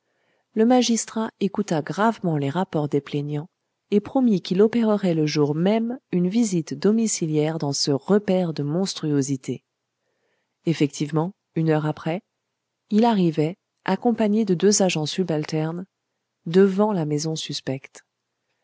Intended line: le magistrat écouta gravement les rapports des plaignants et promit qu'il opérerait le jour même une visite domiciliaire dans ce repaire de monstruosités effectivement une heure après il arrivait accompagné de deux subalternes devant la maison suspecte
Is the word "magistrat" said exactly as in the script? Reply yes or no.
yes